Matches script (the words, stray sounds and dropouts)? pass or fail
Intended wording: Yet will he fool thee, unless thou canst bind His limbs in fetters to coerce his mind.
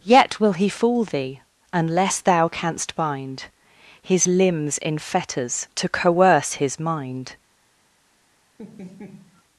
fail